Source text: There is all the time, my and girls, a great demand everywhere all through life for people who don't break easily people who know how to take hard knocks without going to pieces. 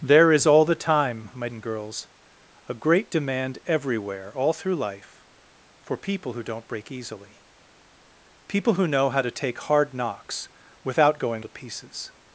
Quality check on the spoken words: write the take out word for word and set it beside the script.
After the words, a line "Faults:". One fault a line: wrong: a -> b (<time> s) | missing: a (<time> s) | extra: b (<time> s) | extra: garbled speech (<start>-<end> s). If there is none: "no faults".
There is all the time, my and girls, a great demand everywhere all through life for people who don't break easily people who know how to take hard knocks without going to pieces.
Faults:
no faults